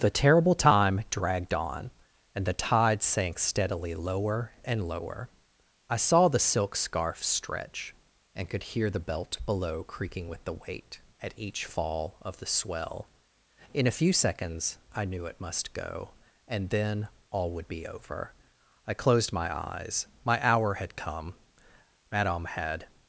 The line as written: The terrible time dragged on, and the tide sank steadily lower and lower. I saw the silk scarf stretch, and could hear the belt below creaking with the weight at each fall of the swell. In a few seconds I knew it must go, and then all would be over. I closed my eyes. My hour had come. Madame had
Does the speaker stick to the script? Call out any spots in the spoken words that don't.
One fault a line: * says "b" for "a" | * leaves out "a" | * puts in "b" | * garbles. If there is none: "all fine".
all fine